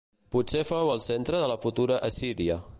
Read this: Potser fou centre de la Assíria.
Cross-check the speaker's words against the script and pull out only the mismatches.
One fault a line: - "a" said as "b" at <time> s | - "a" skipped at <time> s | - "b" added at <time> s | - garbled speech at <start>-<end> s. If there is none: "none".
- "el" added at 0.9 s
- "futura" added at 1.6 s